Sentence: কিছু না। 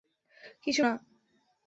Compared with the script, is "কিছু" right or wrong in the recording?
right